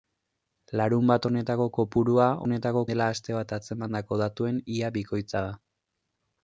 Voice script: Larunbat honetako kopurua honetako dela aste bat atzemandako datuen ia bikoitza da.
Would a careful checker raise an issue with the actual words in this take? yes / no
no